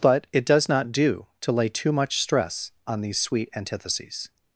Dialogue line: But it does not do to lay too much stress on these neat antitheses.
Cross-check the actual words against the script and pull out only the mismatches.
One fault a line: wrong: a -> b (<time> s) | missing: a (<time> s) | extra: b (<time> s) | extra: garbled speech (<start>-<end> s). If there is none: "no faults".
wrong: neat -> sweet (3.2 s)